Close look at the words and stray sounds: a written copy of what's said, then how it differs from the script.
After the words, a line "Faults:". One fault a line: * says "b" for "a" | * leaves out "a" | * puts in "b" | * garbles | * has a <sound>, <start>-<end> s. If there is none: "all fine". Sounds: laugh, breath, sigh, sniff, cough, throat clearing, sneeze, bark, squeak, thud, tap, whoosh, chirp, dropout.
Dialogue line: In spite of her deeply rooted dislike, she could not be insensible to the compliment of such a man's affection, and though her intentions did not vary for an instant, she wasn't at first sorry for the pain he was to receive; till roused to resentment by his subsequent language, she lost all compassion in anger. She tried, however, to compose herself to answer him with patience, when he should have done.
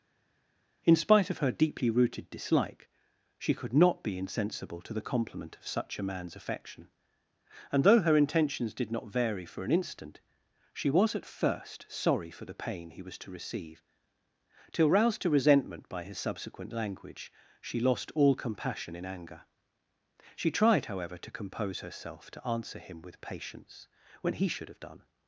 In spite of her deeply rooted dislike, she could not be insensible to the compliment of such a man's affection, and though her intentions did not vary for an instant, she was at first sorry for the pain he was to receive; till roused to resentment by his subsequent language, she lost all compassion in anger. She tried, however, to compose herself to answer him with patience, when he should have done.
Faults:
* says "was" for "wasn't"